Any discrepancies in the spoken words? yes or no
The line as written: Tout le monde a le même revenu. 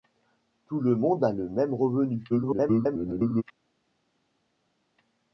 yes